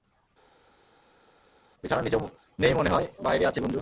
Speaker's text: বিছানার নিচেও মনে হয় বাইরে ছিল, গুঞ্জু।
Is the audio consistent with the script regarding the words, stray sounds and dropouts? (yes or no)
no